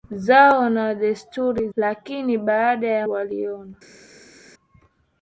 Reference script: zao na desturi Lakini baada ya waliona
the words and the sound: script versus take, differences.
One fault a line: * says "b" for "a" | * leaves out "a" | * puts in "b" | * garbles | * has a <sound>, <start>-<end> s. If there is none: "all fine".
all fine